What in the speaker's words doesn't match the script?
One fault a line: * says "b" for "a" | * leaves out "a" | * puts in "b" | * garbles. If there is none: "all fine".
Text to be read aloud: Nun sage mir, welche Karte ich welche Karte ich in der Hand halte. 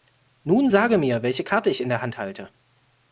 * leaves out "welche Karte ich"